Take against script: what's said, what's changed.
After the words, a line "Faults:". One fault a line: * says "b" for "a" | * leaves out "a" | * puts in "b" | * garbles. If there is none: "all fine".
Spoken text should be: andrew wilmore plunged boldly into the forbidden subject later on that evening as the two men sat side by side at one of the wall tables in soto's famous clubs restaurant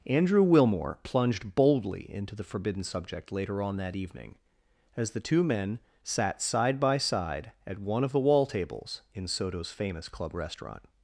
andrew wilmore plunged boldly into the forbidden subject later on that evening as the two men sat side by side at one of the wall tables in soto's famous club restaurant
Faults:
* says "club" for "clubs"